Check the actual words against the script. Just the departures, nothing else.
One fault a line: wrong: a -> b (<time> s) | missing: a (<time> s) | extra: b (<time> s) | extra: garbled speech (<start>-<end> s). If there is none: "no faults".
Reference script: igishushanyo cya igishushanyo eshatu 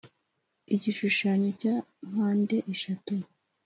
wrong: igishushanyo -> mpande (2.1 s)